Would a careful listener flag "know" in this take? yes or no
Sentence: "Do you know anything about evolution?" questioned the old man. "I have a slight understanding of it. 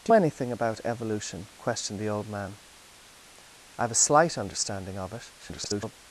yes